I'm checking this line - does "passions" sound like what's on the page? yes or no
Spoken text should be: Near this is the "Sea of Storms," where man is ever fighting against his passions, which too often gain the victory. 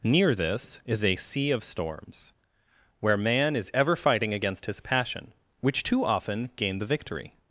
no